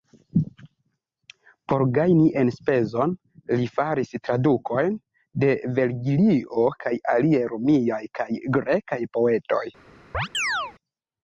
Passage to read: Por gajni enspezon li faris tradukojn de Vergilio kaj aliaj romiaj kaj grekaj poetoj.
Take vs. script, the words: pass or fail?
pass